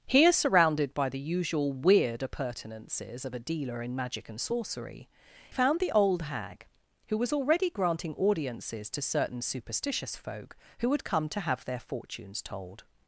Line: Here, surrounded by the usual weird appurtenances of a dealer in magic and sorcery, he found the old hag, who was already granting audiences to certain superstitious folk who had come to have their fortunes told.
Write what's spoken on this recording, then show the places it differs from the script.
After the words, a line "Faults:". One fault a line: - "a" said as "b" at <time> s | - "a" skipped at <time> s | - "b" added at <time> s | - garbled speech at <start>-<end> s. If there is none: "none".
Here, surrounded by the usual weird appurtenances of a dealer in magic and sorcery, found the old hag, who was already granting audiences to certain superstitious folk who had come to have their fortunes told.
Faults:
- "he" skipped at 5.1 s